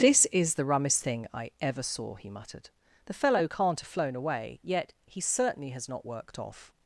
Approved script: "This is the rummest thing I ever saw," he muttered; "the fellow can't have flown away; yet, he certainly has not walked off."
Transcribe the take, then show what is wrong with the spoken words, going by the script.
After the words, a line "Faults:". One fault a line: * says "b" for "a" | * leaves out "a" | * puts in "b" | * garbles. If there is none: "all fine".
"This is the rummest thing I ever saw," he muttered; "the fellow can't have flown away; yet, he certainly has not worked off."
Faults:
* says "worked" for "walked"